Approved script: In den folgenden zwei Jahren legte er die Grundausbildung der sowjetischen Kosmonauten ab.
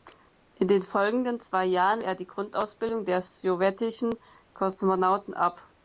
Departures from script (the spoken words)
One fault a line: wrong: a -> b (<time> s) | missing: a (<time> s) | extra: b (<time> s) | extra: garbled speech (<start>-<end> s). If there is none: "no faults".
missing: legte (2.0 s)